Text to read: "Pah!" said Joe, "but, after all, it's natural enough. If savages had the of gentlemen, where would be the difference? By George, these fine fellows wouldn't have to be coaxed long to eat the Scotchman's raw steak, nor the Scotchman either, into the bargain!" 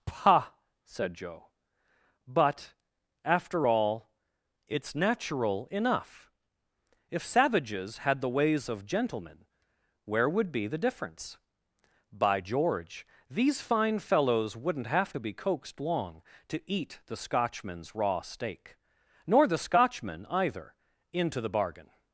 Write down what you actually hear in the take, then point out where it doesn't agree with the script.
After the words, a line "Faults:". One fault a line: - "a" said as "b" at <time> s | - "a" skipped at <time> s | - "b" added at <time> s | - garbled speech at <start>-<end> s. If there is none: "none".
"Pah!" said Joe, "but, after all, it's natural enough. If savages had the ways of gentlemen, where would be the difference? By George, these fine fellows wouldn't have to be coaxed long to eat the Scotchman's raw steak, nor the Scotchman either, into the bargain!"
Faults:
- "ways" added at 8.3 s